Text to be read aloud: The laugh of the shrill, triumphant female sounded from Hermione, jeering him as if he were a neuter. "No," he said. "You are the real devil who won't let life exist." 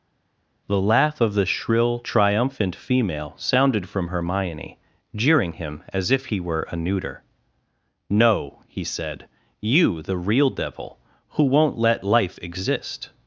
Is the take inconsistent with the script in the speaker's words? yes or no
yes